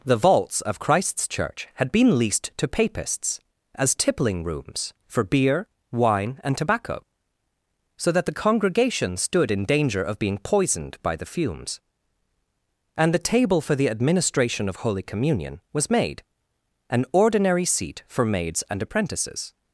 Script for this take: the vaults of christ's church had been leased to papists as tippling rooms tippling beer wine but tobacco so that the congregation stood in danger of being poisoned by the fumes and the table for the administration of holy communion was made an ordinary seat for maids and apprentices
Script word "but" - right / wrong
wrong